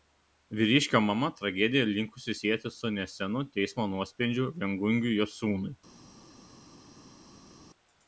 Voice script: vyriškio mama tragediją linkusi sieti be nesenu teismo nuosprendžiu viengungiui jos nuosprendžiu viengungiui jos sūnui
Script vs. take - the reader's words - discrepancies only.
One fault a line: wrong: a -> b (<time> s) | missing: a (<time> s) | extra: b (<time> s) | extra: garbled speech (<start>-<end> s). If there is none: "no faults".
wrong: be -> su (2.8 s)
missing: nuosprendžiu viengungiui jos (5.4 s)